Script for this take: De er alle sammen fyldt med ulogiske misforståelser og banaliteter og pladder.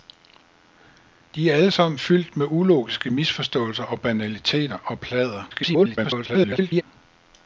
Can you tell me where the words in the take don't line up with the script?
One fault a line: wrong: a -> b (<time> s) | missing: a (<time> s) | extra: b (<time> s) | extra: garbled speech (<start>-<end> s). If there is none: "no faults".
extra: garbled speech (5.5-6.8 s)